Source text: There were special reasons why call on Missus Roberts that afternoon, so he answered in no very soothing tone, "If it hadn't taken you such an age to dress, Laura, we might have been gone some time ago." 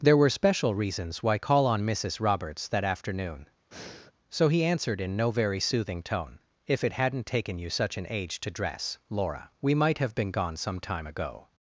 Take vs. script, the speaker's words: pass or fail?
pass